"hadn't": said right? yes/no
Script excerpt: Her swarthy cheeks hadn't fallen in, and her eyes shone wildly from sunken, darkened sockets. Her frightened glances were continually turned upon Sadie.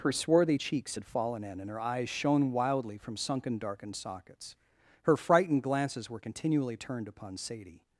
no